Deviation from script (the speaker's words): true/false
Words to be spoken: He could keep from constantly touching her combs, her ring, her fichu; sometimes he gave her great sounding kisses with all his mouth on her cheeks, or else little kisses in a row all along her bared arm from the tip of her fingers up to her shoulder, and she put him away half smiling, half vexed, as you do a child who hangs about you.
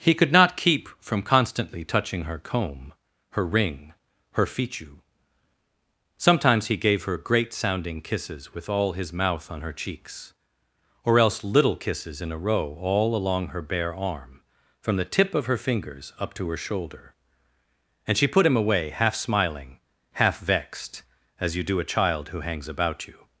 true